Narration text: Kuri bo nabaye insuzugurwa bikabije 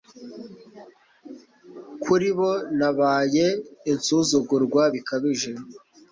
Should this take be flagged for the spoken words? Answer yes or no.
no